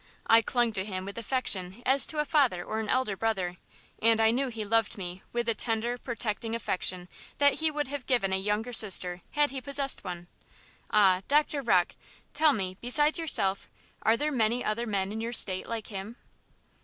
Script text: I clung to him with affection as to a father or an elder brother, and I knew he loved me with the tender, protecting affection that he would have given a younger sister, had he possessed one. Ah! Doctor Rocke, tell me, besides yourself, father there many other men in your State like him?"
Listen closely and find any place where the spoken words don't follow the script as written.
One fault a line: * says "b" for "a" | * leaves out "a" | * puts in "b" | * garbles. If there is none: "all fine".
* says "are" for "father"